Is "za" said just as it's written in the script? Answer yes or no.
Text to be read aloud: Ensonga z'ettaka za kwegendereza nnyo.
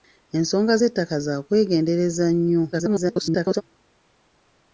yes